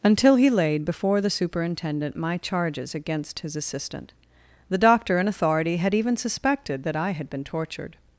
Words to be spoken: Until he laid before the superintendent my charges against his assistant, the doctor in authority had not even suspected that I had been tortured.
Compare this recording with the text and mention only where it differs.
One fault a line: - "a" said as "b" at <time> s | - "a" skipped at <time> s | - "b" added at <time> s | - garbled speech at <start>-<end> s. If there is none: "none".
- "not" skipped at 5.9 s